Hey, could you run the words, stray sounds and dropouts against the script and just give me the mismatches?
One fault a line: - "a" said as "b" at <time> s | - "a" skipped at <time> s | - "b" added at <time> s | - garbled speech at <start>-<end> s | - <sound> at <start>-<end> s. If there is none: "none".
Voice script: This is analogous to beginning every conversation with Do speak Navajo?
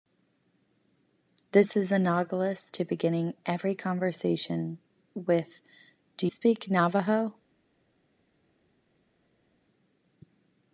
none